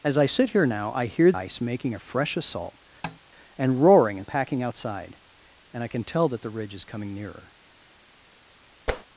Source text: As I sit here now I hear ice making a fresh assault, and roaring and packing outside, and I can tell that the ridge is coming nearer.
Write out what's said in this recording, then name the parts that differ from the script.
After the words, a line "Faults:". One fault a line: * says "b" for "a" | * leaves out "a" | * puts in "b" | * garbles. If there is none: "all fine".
As I sit here now I hear ice making a fresh assault, and roaring and packing outside, and I can tell that the ridge is coming nearer.
Faults:
all fine